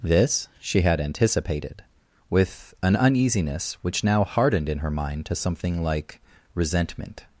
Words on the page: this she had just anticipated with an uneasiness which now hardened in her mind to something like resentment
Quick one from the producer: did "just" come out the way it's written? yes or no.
no